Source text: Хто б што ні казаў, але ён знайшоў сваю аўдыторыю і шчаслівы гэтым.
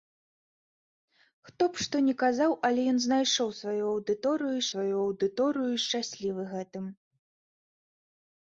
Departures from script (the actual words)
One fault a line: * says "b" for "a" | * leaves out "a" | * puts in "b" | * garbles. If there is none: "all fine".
* puts in "сваю аўдыторыю і"